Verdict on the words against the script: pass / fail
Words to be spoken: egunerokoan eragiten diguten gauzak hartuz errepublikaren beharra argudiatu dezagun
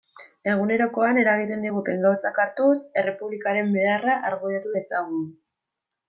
pass